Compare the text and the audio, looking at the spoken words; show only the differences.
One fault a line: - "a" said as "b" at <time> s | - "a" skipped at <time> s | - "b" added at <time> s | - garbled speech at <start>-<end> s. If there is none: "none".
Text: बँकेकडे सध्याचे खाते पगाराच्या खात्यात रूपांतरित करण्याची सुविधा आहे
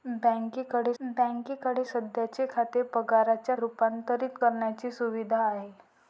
- "बँकेकडे" added at 1.0 s
- "खात्यात" skipped at 3.5 s